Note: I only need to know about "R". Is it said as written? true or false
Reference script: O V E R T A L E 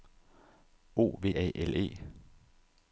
false